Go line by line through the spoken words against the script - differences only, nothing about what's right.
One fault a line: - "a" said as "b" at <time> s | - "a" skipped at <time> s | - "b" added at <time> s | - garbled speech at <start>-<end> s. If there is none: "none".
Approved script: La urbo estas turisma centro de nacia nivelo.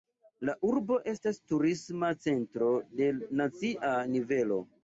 none